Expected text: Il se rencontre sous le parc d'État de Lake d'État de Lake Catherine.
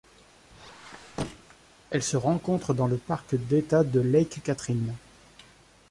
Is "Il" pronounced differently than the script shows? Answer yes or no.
yes